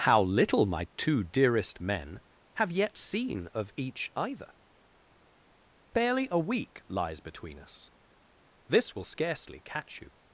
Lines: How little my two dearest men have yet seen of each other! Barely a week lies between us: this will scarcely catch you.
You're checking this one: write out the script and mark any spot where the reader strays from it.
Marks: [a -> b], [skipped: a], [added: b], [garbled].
How little my two dearest men have yet seen of each [other! -> either] Barely a week lies between us: this will scarcely catch you.